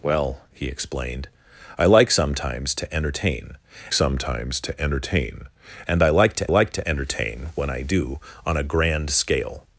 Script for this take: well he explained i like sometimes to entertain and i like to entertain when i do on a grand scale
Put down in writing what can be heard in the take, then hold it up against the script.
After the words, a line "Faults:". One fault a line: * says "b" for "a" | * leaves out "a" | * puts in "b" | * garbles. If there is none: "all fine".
well he explained i like sometimes to entertain sometimes to entertain and i like to like to entertain when i do on a grand scale
Faults:
* puts in "sometimes to entertain"
* puts in "like to"